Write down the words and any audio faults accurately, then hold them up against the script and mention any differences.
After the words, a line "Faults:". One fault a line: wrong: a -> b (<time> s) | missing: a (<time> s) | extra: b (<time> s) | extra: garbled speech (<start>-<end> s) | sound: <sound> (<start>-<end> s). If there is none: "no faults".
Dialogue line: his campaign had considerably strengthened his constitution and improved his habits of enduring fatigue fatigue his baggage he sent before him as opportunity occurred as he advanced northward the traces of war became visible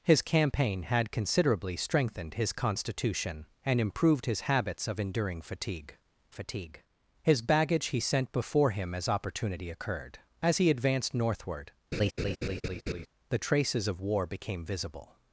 his campaign had considerably strengthened his constitution and improved his habits of enduring fatigue fatigue his baggage he sent before him as opportunity occurred as he advanced northward the traces of war became visible
Faults:
sound: laugh (11.9-13.1 s)